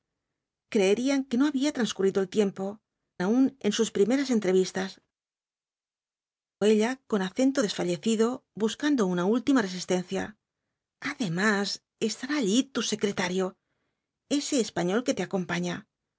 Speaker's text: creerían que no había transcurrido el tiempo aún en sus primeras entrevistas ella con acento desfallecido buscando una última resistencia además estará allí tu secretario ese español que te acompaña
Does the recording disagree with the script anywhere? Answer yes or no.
no